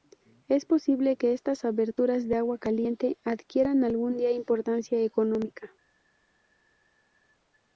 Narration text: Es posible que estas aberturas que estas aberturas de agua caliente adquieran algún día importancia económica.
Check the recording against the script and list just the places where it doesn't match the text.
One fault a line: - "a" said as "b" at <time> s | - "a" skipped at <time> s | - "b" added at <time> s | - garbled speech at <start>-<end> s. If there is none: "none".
- "que estas aberturas" skipped at 2.3 s